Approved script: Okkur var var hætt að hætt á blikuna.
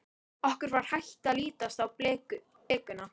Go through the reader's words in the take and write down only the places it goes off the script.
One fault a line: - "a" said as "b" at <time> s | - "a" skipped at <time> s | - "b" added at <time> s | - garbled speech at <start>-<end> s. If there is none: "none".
- "var" skipped at 0.9 s
- "hætt" said as "lítast" at 1.4 s